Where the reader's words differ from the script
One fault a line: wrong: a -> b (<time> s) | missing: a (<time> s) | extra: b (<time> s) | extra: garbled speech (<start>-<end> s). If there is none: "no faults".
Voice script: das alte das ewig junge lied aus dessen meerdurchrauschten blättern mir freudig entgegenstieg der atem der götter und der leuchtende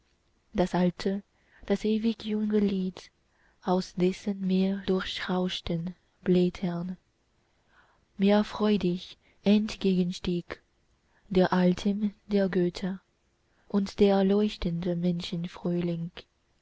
no faults